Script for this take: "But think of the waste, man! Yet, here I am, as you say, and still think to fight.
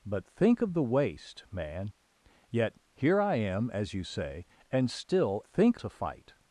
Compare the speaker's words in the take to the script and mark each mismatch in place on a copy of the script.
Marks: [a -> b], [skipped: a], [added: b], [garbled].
"But think of the waste, man! Yet, here I am, as you say, and still think to fight.